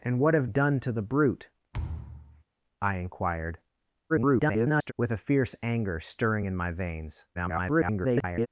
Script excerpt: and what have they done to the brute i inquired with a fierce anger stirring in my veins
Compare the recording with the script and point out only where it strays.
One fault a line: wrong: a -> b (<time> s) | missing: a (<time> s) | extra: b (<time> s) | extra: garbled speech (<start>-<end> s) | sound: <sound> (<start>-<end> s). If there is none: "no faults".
missing: they (0.5 s)
sound: thud (1.7-2.4 s)
extra: garbled speech (4.1-4.9 s)
extra: garbled speech (7.3-8.5 s)